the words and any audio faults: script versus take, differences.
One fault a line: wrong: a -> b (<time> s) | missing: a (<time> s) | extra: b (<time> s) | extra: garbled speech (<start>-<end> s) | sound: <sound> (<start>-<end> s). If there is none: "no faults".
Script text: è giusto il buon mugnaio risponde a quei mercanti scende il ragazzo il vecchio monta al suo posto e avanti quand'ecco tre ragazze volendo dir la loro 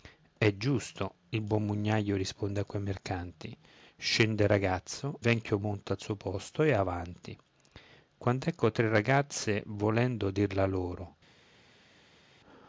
missing: il (5.2 s)